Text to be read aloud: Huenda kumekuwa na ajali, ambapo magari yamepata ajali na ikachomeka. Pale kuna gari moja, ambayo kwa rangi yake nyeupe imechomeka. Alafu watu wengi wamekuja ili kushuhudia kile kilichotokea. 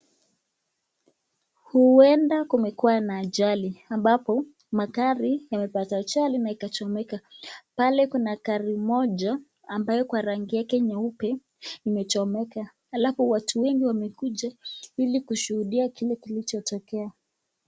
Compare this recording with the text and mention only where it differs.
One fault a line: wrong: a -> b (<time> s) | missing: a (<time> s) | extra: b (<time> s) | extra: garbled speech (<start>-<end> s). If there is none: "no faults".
no faults